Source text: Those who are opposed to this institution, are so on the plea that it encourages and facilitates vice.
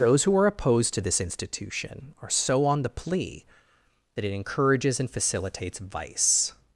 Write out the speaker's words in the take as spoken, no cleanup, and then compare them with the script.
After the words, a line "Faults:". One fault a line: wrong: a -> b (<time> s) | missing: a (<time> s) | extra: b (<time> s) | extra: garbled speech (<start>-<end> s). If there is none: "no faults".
Those who are opposed to this institution, are so on the plea that it encourages and facilitates vice.
Faults:
no faults